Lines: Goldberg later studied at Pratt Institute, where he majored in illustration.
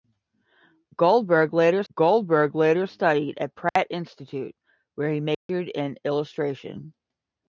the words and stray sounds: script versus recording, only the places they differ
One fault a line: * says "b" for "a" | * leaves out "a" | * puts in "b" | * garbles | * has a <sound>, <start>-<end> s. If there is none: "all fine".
* puts in "goldberg later"
* has a dropout, 3.7-3.8 s
* has a dropout, 5.3-5.5 s